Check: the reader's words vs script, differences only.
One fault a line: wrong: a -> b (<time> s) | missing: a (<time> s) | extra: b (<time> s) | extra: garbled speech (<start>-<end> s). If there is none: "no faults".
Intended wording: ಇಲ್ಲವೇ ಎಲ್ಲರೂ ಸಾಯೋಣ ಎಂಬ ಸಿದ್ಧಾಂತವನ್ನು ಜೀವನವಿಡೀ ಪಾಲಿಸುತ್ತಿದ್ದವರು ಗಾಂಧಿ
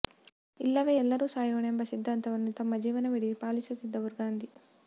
extra: ತಮ್ಮ (2.6 s)